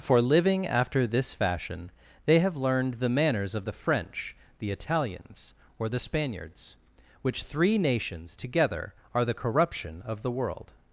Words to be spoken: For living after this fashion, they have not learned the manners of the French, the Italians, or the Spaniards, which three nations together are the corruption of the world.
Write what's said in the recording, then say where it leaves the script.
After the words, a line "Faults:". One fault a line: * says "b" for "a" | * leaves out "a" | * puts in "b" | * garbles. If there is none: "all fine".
For living after this fashion, they have learned the manners of the French, the Italians, or the Spaniards, which three nations together are the corruption of the world.
Faults:
* leaves out "not"